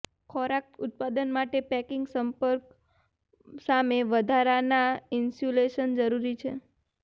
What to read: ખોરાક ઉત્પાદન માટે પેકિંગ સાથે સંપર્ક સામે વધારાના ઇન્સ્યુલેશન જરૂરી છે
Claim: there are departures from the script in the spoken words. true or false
true